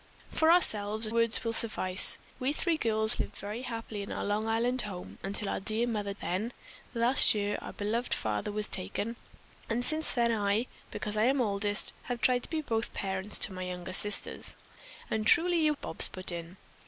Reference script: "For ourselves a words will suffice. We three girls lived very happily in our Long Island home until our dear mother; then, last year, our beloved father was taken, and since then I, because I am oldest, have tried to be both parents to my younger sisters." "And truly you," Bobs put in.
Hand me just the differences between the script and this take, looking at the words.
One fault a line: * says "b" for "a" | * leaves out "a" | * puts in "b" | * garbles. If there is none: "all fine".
all fine